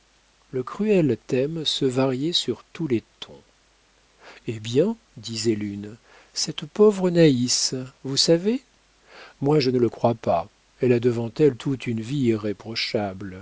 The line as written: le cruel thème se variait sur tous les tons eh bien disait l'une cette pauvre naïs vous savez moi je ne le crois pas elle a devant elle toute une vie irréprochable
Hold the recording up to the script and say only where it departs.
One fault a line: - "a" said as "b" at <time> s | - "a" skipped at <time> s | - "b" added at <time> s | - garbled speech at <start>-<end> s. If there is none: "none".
none